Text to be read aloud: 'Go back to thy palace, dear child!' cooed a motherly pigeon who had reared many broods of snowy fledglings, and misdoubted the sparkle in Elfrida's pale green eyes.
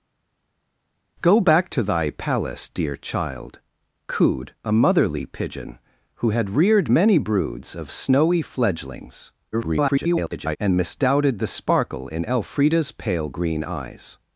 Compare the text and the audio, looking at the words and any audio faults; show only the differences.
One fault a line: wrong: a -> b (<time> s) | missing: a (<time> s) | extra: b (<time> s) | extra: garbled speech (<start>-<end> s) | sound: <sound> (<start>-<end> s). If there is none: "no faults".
extra: garbled speech (9.5-10.6 s)